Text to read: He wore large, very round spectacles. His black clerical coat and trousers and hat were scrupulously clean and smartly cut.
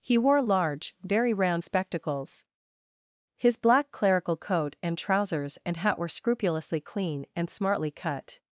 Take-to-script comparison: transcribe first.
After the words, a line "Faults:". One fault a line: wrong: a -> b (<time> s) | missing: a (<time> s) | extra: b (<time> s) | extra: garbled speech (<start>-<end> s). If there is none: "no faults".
He wore large, very round spectacles. His black clerical coat and trousers and hat were scrupulously clean and smartly cut.
Faults:
no faults